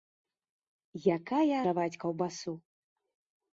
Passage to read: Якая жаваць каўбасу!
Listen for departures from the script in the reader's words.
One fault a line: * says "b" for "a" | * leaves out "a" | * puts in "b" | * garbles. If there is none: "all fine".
all fine